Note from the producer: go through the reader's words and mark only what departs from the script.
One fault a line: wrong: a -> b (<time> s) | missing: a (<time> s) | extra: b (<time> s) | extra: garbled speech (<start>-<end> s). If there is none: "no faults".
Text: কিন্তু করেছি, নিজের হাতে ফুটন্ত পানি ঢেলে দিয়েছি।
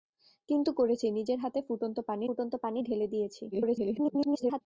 extra: ফুটন্ত পানি (2.2 s)
extra: garbled speech (3.5-4.6 s)